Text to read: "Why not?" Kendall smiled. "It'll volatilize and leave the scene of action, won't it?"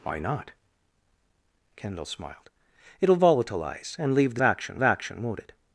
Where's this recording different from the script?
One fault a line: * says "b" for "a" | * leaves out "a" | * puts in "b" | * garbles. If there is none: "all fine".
* says "action" for "scene"